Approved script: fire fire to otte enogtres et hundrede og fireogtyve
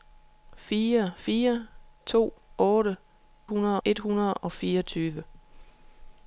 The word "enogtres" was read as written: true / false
false